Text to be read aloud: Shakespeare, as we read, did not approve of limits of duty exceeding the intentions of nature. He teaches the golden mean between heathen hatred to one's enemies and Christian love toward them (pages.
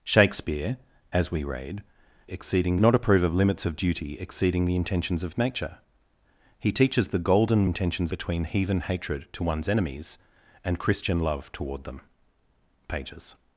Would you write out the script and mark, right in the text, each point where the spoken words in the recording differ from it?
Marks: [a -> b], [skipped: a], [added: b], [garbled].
Shakespeare, as we read, [did -> exceeding] not approve of limits of duty exceeding the intentions of nature. He teaches the golden [mean -> intentions] between heathen hatred to one's enemies and Christian love toward them (pages.